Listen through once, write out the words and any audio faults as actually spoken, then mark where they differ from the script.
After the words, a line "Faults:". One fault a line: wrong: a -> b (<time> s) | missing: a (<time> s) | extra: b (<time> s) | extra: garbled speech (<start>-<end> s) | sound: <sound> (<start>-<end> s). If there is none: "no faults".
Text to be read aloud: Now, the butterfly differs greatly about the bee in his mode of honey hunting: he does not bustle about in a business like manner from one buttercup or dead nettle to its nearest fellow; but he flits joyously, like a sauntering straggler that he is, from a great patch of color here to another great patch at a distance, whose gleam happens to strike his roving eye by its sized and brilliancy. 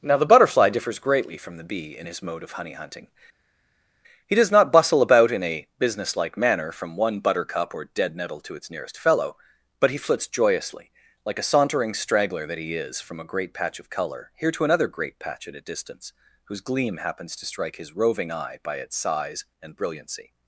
Now, the butterfly differs greatly from the bee in his mode of honey hunting: he does not bustle about in a business like manner from one buttercup or dead nettle to its nearest fellow; but he flits joyously, like a sauntering straggler that he is, from a great patch of color here to another great patch at a distance, whose gleam happens to strike his roving eye by its size and brilliancy.
Faults:
wrong: about -> from (1.4 s)
wrong: sized -> size (19.0 s)